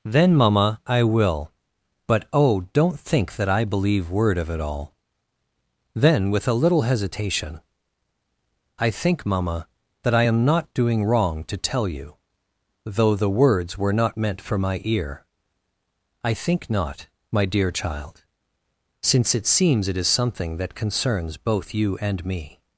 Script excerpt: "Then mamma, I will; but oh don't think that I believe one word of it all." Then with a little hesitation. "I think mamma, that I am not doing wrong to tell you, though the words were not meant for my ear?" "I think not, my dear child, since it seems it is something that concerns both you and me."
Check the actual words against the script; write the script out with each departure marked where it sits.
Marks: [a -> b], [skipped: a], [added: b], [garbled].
"Then mamma, I will; but oh don't think that I believe [skipped: one] word of it all." Then with a little hesitation. "I think mamma, that I am not doing wrong to tell you, though the words were not meant for my ear?" "I think not, my dear child, since it seems it is something that concerns both you and me."